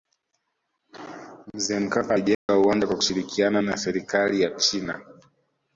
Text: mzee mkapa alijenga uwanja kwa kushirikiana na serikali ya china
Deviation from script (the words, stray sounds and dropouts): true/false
true